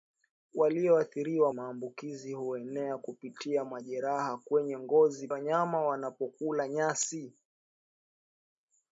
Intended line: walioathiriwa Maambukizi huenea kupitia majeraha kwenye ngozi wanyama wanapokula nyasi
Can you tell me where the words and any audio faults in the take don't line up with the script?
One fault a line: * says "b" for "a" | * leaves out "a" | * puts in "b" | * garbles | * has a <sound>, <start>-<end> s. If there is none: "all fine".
all fine